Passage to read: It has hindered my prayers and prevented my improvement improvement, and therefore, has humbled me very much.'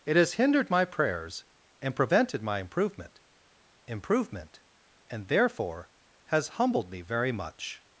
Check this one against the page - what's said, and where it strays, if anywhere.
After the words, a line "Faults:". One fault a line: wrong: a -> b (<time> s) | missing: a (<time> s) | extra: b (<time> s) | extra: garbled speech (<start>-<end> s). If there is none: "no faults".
It has hindered my prayers and prevented my improvement improvement, and therefore, has humbled me very much.'
Faults:
no faults